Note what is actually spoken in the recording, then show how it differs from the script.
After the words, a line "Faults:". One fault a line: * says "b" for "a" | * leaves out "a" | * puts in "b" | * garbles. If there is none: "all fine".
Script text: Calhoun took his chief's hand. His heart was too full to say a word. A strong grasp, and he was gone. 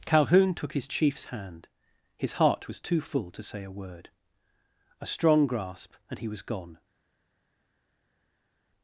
Calhoun took his chief's hand. His heart was too full to say a word. A strong grasp, and he was gone.
Faults:
all fine